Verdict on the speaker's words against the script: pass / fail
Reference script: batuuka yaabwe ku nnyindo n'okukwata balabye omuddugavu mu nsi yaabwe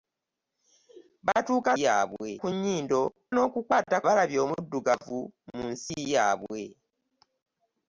pass